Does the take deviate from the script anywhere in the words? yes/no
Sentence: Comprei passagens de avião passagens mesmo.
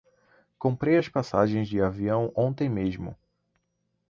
yes